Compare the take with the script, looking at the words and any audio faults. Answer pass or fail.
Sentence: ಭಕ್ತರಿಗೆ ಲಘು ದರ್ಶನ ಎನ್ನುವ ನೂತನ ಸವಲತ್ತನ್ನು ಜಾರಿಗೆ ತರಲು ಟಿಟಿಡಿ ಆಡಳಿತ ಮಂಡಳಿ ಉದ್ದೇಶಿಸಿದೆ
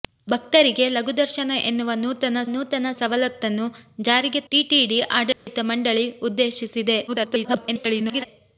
fail